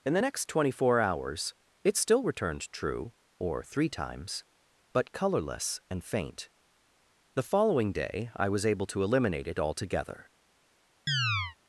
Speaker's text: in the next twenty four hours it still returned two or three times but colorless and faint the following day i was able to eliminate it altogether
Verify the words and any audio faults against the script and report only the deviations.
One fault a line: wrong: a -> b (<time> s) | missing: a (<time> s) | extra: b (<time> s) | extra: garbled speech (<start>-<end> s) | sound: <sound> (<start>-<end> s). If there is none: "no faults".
wrong: two -> true (2.7 s)
sound: chirp (11.1-11.6 s)